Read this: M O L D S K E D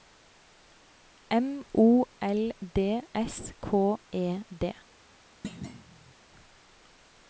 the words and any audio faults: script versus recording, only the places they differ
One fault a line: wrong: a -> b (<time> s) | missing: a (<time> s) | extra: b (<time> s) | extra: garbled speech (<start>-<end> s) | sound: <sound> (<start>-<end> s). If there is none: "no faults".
sound: thud (5.4-6.1 s)